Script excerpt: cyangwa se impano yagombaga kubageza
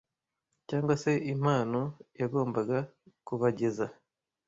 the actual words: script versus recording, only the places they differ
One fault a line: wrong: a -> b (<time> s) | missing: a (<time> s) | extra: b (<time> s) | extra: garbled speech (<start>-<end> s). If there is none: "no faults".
no faults